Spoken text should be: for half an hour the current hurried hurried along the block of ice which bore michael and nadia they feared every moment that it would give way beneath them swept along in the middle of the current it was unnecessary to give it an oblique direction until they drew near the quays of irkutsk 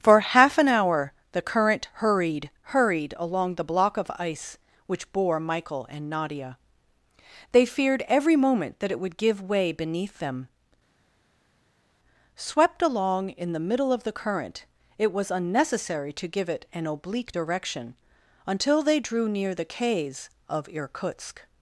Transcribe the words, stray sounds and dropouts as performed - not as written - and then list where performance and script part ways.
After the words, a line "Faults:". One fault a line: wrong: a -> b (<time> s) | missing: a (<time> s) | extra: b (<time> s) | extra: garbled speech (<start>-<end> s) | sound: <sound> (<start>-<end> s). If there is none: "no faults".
for half an hour the current hurried hurried along the block of ice which bore michael and nadia they feared every moment that it would give way beneath them swept along in the middle of the current it was unnecessary to give it an oblique direction until they drew near the quays of irkutsk
Faults:
no faults